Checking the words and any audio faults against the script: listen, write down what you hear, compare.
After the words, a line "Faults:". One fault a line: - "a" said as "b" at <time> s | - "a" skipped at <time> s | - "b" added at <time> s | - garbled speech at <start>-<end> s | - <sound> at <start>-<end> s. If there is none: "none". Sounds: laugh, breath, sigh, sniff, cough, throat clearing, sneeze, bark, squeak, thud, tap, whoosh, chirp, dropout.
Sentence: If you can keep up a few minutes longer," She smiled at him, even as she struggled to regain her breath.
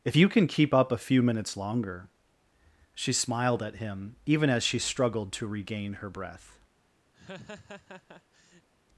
If you can keep up a few minutes longer," She smiled at him, even as she struggled to regain her breath.
Faults:
- laugh at 7.1-8.7 s